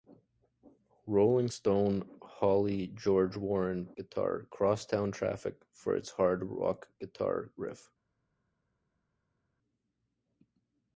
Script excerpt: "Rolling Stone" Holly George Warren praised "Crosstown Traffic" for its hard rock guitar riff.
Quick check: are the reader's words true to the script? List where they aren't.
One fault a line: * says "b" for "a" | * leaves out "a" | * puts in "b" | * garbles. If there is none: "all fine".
* says "guitar" for "praised"